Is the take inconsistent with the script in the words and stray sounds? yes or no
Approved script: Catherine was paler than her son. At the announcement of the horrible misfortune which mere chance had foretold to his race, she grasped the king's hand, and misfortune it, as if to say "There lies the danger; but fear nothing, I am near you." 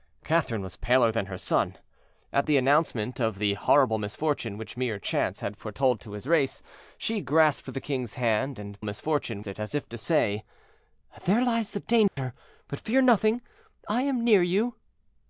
yes